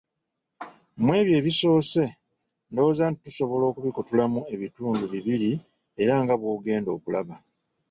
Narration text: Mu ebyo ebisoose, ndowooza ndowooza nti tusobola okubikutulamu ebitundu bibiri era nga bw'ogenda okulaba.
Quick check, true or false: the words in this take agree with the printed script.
false